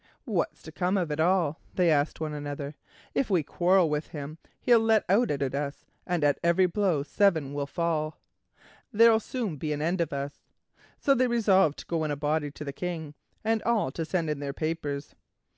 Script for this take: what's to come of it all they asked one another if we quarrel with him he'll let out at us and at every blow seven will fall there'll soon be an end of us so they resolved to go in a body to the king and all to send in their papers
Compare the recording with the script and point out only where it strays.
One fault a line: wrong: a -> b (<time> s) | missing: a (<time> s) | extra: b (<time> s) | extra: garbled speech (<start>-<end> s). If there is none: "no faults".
extra: at (5.4 s)